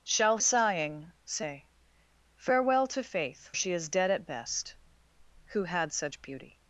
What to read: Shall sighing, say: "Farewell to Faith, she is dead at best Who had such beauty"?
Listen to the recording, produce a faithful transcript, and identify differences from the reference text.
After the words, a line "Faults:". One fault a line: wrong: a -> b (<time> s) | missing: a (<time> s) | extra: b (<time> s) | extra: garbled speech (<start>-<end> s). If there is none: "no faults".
Shall sighing, say: "Farewell to Faith, she is dead at best Who had such beauty"?
Faults:
no faults